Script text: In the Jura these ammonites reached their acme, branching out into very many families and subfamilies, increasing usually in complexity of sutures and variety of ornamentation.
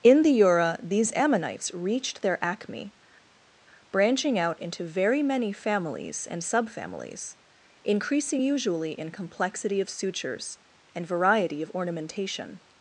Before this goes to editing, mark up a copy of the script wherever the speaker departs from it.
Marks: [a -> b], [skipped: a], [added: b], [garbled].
In the Jura these ammonites reached their acme, branching out into very many families and subfamilies, increasing usually in complexity of sutures and variety of ornamentation.